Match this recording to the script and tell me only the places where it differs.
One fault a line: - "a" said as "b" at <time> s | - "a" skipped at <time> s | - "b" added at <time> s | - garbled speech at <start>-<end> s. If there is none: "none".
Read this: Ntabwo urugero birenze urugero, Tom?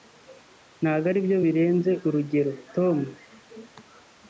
- "urugero" said as "aribyo" at 1.1 s